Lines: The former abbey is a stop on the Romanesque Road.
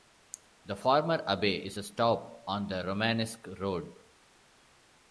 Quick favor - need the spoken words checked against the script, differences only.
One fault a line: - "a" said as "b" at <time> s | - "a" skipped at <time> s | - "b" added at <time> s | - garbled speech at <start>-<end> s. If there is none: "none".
none